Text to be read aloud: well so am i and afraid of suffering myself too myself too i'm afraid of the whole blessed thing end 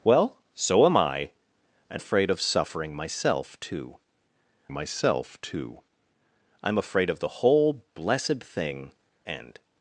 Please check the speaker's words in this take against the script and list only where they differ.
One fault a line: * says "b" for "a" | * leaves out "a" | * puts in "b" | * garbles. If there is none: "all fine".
all fine